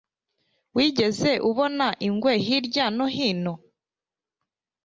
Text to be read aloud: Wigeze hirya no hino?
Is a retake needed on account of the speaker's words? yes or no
yes